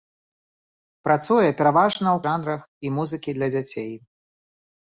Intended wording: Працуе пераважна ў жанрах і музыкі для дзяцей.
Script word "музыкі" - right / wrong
right